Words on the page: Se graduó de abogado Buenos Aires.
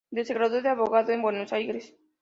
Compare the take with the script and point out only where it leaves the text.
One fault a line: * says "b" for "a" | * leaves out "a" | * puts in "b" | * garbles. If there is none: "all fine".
* puts in "en"